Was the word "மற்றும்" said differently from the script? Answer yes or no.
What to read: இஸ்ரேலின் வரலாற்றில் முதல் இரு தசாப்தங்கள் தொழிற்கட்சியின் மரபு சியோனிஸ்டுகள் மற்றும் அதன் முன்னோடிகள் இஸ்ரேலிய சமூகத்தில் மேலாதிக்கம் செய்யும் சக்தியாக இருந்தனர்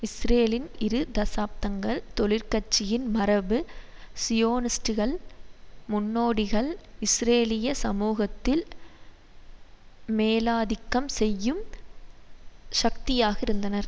yes